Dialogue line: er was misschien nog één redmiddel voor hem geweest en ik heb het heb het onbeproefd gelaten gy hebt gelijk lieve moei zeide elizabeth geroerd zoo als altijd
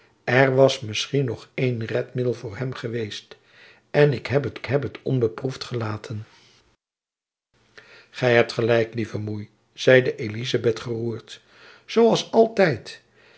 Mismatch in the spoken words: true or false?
false